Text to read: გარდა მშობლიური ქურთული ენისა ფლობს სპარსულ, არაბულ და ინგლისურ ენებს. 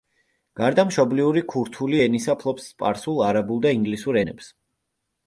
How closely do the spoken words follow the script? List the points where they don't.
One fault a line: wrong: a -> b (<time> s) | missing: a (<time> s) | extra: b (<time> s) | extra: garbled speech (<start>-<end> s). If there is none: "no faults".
no faults